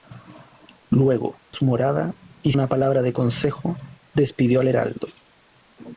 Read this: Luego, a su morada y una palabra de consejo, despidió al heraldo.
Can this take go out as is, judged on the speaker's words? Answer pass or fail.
pass